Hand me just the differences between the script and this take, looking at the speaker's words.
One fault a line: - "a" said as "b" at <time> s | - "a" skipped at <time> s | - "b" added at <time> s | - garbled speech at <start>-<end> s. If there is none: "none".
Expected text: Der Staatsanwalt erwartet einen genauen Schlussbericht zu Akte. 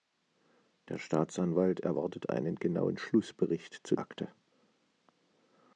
none